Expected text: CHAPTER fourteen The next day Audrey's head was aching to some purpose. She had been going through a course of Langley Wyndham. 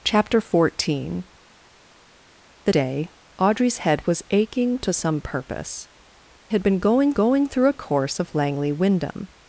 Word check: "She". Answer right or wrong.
wrong